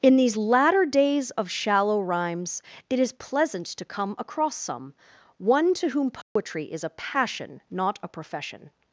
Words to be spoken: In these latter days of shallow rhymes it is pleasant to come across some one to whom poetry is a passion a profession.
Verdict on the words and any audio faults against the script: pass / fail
fail